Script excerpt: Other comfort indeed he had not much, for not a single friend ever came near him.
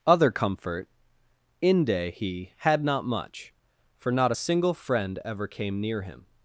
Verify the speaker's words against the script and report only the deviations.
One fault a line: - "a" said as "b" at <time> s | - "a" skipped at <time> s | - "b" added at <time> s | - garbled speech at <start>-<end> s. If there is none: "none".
- "indeed" said as "inde" at 1.6 s